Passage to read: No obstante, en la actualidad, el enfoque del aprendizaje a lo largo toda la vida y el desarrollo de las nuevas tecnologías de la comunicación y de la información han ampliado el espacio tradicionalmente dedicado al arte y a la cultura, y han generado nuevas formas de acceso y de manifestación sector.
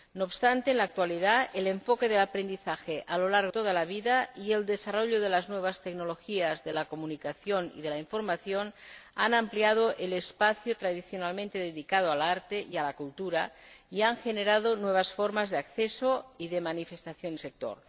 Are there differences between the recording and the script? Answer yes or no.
no